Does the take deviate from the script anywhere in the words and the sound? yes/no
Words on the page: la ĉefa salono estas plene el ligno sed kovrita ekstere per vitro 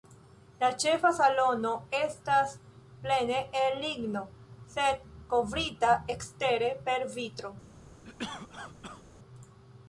yes